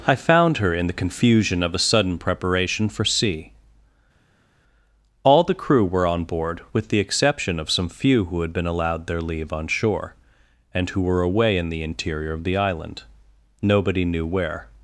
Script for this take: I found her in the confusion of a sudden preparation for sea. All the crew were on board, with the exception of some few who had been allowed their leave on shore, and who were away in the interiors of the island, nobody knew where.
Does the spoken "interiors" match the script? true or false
false